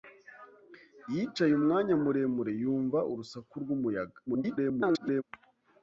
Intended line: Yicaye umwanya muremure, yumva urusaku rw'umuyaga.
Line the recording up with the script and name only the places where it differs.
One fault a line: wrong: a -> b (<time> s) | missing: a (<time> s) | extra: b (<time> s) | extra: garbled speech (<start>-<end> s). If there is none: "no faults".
extra: garbled speech (4.3-5.2 s)